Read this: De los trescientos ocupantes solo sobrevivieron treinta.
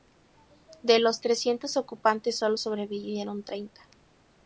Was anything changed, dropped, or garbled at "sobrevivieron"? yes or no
no